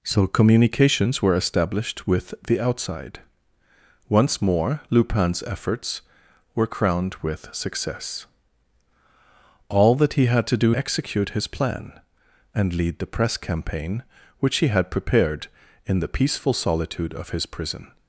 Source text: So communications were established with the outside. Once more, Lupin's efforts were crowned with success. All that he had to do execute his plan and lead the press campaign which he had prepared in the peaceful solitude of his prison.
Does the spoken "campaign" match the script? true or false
true